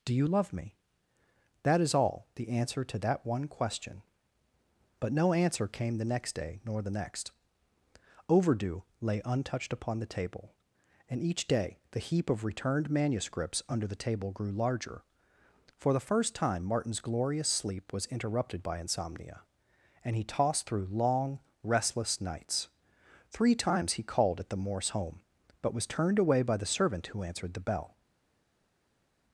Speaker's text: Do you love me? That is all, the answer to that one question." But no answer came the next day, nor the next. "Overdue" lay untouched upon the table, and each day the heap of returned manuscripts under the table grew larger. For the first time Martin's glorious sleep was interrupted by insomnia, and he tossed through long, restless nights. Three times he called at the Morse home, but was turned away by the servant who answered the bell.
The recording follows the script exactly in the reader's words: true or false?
true